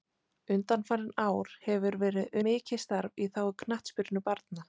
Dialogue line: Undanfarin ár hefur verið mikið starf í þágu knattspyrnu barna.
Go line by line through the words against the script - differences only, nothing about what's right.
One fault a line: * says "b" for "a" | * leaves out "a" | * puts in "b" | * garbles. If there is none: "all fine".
all fine